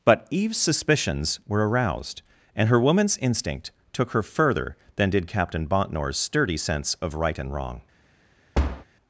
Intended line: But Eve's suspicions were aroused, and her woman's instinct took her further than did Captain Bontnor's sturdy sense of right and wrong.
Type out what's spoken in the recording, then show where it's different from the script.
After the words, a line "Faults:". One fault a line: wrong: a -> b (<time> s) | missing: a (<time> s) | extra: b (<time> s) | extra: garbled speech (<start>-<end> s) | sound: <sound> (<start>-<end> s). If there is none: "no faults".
But Eve's suspicions were aroused, and her woman's instinct took her further than did Captain Bontnor's sturdy sense of right and wrong.
Faults:
sound: thud (8.5-8.8 s)